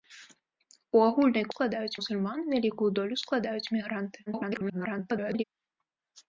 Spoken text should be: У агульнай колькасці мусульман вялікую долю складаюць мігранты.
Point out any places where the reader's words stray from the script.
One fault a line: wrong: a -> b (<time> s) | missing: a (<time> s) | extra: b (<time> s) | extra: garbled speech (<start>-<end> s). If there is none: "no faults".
wrong: колькасці -> складаюць (1.5 s)
extra: garbled speech (4.3-5.4 s)